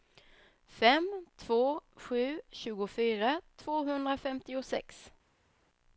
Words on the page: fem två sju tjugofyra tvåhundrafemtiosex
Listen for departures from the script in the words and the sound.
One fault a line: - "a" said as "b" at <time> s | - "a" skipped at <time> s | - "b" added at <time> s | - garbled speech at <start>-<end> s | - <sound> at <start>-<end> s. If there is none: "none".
none